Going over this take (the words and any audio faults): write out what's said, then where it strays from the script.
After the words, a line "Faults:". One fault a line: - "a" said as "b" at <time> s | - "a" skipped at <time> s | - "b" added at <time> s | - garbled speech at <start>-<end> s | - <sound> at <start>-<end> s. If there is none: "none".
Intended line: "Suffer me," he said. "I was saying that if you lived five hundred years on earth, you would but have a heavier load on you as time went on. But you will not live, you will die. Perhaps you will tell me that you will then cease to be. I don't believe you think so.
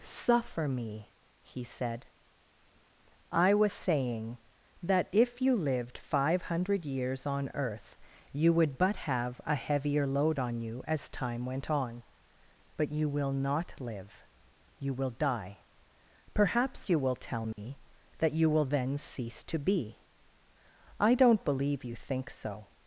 "Suffer me," he said. "I was saying that if you lived five hundred years on earth, you would but have a heavier load on you as time went on. But you will not live, you will die. Perhaps you will tell me that you will then cease to be. I don't believe you think so.
Faults:
- dropout at 17.5-17.6 s